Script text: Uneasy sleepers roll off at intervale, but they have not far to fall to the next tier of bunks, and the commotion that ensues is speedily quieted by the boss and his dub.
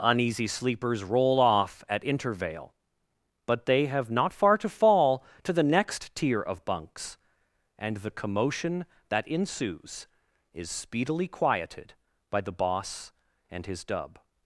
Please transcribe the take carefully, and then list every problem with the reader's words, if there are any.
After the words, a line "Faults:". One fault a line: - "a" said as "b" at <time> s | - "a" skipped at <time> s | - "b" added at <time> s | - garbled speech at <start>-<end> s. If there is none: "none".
Uneasy sleepers roll off at intervale, but they have not far to fall to the next tier of bunks, and the commotion that ensues is speedily quieted by the boss and his dub.
Faults:
none